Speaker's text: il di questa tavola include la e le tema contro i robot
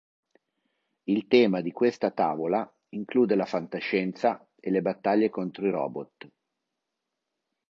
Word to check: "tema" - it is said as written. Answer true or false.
false